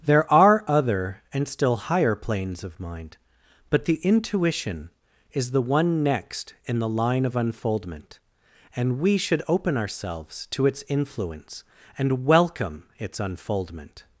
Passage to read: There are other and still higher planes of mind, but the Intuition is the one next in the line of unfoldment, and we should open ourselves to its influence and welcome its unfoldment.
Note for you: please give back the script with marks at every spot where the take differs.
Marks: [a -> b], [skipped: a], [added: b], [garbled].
There are other and still higher planes of mind, but the Intuition is the one next in the line of unfoldment, and we should open ourselves to its influence and welcome its unfoldment.